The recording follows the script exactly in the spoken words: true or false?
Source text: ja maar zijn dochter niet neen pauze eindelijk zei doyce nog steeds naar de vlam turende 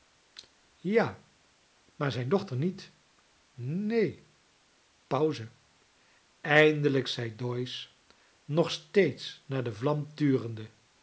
true